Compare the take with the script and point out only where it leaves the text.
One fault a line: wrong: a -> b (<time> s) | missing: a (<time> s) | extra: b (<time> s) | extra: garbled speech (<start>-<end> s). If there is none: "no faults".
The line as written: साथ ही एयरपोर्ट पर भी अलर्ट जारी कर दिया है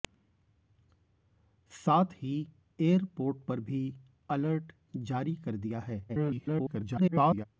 extra: garbled speech (6.1-7.5 s)